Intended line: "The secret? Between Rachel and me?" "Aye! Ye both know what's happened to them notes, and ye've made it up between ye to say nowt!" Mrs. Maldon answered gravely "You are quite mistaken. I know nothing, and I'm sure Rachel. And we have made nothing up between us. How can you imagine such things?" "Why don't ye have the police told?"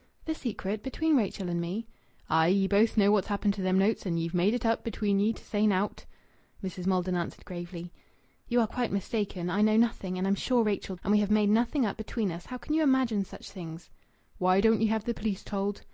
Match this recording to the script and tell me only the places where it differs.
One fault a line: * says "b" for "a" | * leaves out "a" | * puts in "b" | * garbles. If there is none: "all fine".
all fine